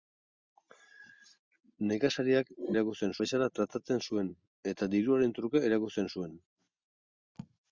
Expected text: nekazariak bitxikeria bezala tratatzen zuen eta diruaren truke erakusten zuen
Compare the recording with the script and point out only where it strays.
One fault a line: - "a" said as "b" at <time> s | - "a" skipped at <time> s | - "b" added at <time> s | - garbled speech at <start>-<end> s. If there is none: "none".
- "bitxikeria" said as "erakusten" at 2.8 s